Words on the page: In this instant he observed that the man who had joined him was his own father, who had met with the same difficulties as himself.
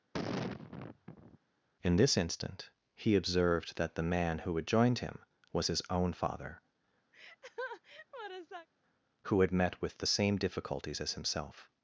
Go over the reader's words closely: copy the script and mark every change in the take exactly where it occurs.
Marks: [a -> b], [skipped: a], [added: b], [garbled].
In this instant he observed that the man who had joined him was his own father, who had met with the same difficulties as himself.